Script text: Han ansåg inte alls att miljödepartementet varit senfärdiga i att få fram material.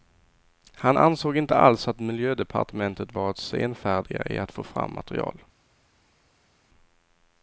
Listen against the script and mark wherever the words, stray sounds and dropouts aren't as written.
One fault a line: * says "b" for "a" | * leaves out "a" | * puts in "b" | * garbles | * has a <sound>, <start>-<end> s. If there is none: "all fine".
all fine